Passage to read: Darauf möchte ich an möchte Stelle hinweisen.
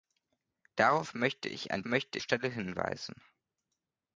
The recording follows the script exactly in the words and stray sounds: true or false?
true